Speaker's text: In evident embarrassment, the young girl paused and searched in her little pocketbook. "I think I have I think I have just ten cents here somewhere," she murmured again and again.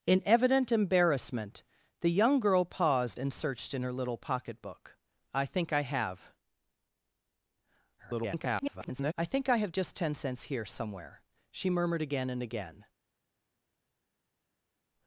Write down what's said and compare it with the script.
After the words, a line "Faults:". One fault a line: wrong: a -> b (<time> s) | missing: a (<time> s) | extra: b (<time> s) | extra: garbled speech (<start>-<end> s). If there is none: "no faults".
In evident embarrassment, the young girl paused and searched in her little pocketbook. "I think I have [garbled] I think I have just ten cents here somewhere," she murmured again and again.
Faults:
extra: garbled speech (8.0-9.1 s)